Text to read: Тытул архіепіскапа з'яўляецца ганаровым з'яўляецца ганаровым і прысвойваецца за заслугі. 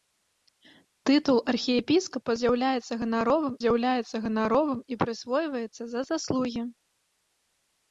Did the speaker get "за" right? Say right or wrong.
right